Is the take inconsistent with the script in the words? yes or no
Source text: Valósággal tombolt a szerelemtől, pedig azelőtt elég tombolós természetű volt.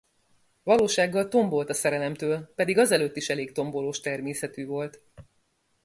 yes